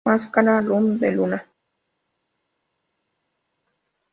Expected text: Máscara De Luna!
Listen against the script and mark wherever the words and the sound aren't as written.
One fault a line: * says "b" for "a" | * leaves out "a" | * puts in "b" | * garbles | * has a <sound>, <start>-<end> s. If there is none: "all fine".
* puts in "Luz"